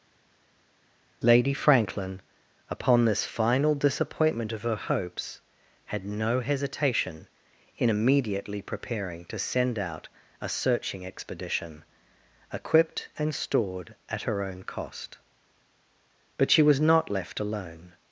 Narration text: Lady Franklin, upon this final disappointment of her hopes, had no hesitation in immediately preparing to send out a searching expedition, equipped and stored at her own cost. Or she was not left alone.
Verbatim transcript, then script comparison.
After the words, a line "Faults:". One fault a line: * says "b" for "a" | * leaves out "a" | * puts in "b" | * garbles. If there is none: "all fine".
Lady Franklin, upon this final disappointment of her hopes, had no hesitation in immediately preparing to send out a searching expedition, equipped and stored at her own cost. But she was not left alone.
Faults:
* says "But" for "Or"